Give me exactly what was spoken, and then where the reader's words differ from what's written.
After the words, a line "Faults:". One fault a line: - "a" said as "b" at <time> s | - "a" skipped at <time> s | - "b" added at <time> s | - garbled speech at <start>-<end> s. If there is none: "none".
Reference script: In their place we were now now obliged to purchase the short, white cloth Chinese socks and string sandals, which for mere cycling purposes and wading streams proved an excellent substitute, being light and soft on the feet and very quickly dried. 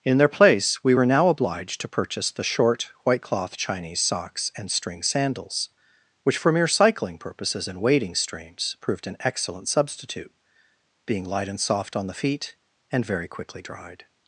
In their place we were now obliged to purchase the short, white cloth Chinese socks and string sandals, which for mere cycling purposes and wading streams proved an excellent substitute, being light and soft on the feet and very quickly dried.
Faults:
- "now" skipped at 1.3 s